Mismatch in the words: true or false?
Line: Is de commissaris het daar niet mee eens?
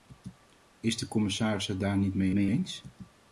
true